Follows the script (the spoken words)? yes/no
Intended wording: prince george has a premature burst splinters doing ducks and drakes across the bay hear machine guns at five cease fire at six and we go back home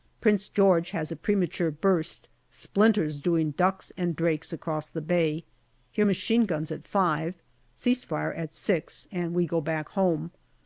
yes